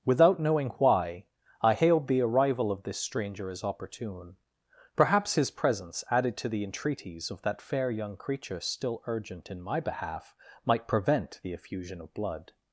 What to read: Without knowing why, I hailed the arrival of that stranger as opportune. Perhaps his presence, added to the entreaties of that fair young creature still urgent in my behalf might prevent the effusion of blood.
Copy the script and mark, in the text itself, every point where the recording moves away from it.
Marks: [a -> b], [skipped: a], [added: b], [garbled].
Without knowing why, I hailed the arrival of [that -> this] stranger as opportune. Perhaps his presence, added to the entreaties of that fair young creature still urgent in my behalf might prevent the effusion of blood.